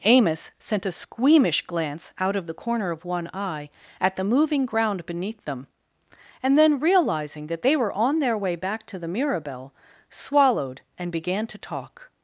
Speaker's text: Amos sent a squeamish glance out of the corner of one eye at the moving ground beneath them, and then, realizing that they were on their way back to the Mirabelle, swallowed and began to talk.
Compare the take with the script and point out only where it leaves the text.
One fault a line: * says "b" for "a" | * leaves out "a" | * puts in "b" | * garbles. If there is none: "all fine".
all fine